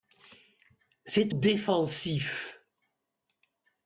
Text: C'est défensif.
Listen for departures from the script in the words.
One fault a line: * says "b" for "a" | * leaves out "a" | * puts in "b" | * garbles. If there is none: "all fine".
all fine